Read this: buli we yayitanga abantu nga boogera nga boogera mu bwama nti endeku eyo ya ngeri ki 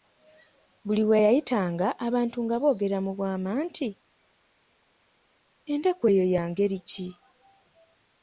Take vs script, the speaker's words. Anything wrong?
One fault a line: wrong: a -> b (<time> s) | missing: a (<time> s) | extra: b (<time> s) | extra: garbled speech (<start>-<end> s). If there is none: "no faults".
missing: nga boogera (3.0 s)